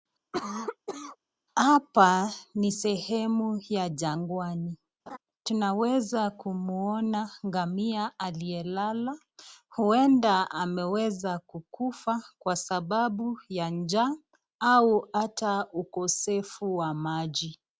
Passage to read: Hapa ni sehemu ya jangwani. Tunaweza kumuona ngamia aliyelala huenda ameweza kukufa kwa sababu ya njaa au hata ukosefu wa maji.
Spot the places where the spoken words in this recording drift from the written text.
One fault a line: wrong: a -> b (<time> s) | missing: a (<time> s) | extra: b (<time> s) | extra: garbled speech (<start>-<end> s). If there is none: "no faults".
no faults